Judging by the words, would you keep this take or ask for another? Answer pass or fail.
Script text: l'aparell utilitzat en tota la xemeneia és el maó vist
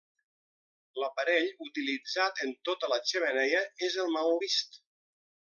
pass